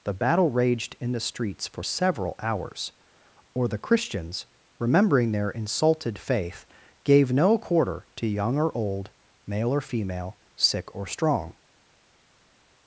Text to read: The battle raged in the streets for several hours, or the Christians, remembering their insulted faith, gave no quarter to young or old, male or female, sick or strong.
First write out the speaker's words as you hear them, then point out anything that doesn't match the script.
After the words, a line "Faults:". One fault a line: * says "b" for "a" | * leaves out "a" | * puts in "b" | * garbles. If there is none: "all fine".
The battle raged in the streets for several hours, or the Christians, remembering their insulted faith, gave no quarter to young or old, male or female, sick or strong.
Faults:
all fine